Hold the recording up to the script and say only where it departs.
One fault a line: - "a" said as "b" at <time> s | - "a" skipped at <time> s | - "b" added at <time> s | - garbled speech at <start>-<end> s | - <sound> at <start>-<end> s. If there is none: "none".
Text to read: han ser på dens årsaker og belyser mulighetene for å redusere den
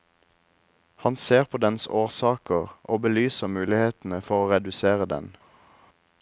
none